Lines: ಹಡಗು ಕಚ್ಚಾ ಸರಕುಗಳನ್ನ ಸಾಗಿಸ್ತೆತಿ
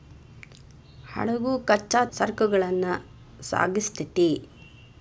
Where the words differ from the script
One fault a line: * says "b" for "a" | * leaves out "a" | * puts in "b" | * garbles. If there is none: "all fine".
all fine